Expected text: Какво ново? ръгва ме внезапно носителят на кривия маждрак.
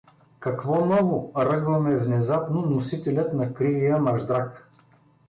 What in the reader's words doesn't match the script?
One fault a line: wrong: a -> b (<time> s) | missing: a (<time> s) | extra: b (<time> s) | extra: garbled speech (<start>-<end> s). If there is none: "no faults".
no faults